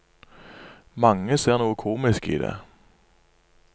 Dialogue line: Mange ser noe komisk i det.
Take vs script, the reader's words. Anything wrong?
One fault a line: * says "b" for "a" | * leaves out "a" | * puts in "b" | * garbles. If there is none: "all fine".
all fine